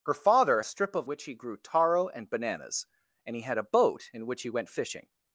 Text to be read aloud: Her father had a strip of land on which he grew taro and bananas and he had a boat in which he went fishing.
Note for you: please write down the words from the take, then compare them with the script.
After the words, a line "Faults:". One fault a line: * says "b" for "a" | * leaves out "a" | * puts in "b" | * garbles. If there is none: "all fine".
Her father a strip of which he grew taro and bananas and he had a boat in which he went fishing.
Faults:
* leaves out "had"
* leaves out "land on"